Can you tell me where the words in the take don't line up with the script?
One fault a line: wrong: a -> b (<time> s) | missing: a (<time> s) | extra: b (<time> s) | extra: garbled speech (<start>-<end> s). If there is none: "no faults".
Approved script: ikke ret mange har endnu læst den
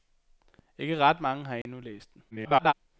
extra: garbled speech (2.3-2.7 s)